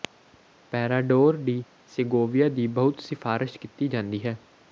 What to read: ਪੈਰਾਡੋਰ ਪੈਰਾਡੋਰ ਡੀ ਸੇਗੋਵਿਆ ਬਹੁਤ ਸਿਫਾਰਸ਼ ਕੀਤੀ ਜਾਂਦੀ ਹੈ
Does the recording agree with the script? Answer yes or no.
no